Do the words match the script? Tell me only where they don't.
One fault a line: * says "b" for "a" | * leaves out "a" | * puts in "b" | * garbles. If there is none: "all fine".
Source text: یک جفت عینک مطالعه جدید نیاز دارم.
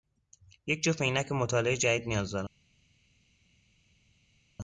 all fine